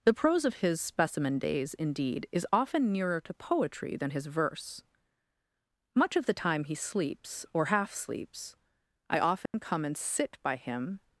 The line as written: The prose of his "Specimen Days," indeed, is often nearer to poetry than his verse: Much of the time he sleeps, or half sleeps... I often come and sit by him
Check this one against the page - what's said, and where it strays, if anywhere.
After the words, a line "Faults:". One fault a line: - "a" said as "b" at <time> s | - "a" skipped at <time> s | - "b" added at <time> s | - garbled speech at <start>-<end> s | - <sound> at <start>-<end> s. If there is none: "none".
The prose of his "Specimen Days," indeed, is often nearer to poetry than his verse: Much of the time he sleeps, or half sleeps... I often come and sit by him
Faults:
- dropout at 9.5-9.5 s